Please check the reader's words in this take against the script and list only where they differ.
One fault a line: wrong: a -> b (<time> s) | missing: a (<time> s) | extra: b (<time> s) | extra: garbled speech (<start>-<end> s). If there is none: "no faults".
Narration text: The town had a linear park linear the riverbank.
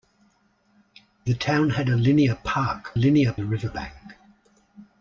no faults